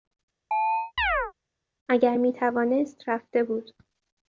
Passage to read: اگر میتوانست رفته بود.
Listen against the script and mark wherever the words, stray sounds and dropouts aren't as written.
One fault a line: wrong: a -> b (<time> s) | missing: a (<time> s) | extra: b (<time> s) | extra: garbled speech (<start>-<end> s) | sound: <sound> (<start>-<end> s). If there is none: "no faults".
sound: chirp (0.5-1.3 s)